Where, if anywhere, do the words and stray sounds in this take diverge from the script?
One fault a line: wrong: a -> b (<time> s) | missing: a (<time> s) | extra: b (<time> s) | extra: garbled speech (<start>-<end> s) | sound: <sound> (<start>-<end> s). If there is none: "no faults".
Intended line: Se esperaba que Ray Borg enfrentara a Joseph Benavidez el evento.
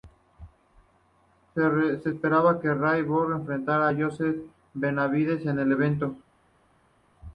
extra: en (5.5 s)